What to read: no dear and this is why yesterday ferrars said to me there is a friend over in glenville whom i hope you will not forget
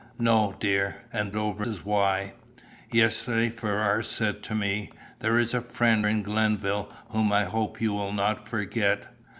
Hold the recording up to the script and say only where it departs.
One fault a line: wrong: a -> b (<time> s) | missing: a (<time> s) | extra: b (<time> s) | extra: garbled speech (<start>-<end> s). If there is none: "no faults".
wrong: this -> over (1.4 s)
missing: over (6.1 s)